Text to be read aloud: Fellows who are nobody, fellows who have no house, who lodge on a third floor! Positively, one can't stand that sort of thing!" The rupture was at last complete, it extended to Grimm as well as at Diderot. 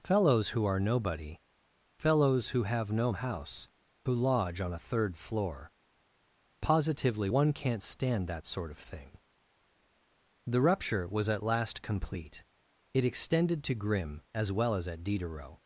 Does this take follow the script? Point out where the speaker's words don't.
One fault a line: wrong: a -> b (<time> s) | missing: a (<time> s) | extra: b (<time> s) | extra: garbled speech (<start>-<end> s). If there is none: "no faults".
no faults